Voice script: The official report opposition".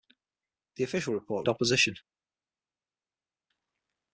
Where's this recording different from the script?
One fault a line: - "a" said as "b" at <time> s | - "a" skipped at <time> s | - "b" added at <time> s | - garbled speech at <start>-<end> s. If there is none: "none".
none